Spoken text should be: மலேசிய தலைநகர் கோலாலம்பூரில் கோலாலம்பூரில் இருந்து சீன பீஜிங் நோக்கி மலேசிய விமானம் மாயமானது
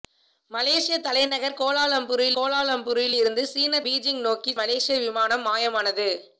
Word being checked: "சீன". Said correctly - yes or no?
yes